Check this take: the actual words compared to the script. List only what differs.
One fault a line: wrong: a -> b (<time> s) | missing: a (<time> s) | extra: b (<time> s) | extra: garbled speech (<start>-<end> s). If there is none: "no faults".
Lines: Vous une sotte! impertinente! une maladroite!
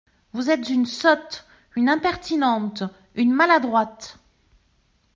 extra: êtes (0.5 s)
extra: une (1.8 s)